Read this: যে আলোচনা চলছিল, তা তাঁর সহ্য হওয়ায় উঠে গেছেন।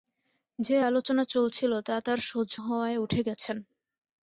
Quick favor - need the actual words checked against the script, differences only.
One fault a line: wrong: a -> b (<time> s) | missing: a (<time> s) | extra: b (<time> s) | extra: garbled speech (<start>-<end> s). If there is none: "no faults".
no faults